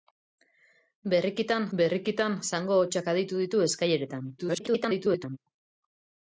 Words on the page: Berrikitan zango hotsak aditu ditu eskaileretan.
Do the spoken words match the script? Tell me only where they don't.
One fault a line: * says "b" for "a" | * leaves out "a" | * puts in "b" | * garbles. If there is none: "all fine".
* puts in "berrikitan"
* garbles